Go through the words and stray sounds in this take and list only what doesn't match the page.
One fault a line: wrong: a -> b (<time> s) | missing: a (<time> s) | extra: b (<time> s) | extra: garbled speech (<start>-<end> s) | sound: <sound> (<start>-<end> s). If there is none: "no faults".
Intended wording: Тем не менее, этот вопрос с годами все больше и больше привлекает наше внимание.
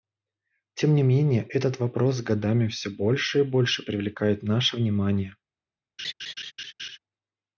sound: laugh (6.0-7.0 s)